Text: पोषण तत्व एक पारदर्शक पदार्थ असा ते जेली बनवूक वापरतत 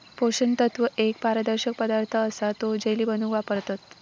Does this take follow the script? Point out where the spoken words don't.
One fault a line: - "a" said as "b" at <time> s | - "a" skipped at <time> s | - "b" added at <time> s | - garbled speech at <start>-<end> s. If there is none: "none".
- "ते" said as "तो" at 2.6 s